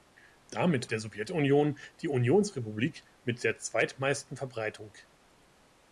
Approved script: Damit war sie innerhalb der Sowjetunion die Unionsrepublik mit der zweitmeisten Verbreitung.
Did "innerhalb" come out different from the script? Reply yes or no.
yes